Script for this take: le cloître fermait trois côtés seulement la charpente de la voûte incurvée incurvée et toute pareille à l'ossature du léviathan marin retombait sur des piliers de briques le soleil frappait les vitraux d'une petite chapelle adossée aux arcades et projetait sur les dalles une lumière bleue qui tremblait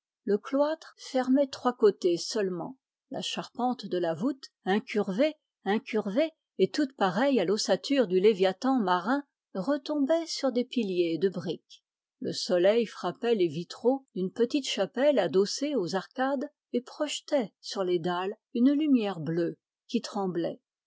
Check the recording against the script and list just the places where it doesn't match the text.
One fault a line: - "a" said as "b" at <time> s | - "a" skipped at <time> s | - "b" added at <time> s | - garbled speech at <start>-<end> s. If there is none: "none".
none